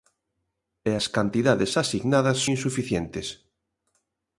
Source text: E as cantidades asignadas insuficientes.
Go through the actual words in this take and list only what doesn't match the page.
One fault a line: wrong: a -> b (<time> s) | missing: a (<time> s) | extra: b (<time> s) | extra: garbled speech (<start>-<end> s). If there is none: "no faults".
no faults